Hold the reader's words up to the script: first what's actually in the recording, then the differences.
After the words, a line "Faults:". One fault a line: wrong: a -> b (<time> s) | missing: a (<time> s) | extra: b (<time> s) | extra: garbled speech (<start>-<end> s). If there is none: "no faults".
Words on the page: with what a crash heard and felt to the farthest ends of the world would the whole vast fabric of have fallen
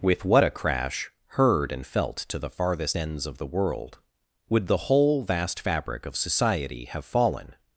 with what a crash heard and felt to the farthest ends of the world would the whole vast fabric of society have fallen
Faults:
extra: society (6.2 s)